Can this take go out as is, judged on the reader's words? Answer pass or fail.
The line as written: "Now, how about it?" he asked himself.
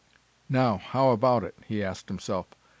pass